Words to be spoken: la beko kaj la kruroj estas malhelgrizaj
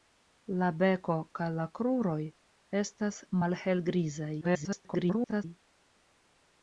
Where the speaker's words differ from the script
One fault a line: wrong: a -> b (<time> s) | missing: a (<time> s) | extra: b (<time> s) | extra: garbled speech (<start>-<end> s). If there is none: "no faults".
extra: garbled speech (4.4-5.4 s)